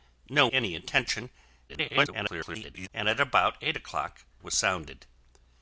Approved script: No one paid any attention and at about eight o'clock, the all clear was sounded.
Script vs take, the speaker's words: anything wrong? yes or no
yes